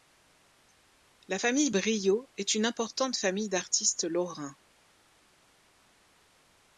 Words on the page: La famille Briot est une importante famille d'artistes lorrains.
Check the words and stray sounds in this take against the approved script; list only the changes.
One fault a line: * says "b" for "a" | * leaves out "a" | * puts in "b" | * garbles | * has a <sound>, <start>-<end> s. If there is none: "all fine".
all fine